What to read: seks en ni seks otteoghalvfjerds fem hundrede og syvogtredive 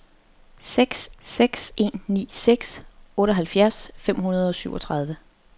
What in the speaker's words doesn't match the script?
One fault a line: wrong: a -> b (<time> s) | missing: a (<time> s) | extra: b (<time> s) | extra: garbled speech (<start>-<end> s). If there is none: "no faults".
extra: seks (1.2 s)